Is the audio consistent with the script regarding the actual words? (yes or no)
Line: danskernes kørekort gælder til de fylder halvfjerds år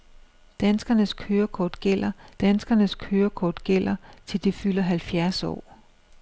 no